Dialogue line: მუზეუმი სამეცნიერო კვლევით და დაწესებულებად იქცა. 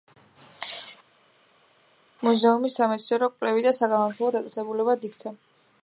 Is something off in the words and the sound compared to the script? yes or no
yes